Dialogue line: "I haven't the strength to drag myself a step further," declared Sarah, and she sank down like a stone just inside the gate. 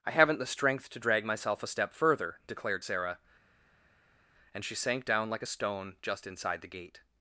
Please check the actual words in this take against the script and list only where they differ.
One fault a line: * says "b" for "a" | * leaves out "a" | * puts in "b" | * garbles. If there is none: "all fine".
all fine